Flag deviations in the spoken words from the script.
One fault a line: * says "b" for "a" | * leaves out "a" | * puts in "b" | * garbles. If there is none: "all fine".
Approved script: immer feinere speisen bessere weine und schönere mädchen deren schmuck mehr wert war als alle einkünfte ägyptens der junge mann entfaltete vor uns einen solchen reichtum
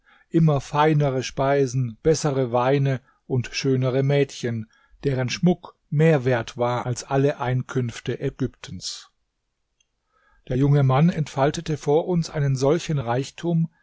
all fine